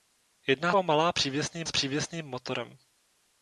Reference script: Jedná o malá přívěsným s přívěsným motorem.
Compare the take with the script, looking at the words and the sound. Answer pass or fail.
pass